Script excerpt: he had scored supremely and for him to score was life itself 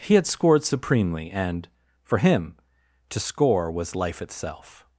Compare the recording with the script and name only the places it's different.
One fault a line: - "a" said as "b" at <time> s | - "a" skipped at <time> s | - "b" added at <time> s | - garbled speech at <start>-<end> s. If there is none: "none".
none